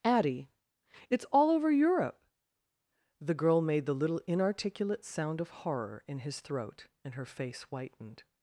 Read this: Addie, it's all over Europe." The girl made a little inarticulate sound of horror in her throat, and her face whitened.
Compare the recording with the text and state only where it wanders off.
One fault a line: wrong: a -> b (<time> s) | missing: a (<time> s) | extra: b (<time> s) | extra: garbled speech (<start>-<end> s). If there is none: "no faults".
wrong: a -> the (3.9 s)
wrong: her -> his (6.2 s)